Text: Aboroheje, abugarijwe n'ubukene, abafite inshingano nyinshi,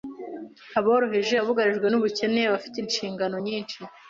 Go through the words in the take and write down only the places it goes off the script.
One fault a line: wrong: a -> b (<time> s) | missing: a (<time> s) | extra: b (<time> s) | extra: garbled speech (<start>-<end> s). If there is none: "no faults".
no faults